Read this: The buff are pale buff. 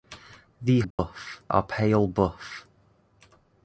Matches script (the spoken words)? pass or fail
pass